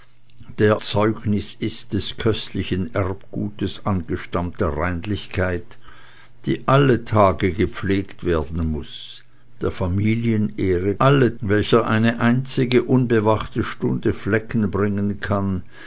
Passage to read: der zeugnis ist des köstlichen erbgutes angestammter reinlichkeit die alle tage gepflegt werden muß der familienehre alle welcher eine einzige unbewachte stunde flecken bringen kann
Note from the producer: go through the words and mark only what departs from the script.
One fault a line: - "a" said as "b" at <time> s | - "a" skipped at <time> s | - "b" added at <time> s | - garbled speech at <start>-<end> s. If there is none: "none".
none